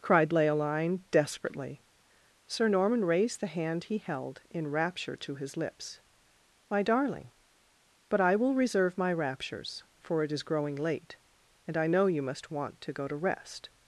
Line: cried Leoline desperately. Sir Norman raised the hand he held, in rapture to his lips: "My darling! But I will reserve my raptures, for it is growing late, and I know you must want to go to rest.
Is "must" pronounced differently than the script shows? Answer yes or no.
no